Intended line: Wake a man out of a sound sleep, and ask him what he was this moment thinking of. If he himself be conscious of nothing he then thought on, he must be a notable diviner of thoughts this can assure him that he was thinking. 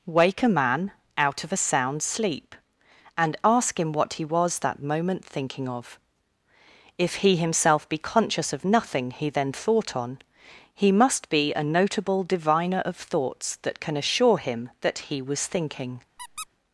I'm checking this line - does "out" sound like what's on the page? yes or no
yes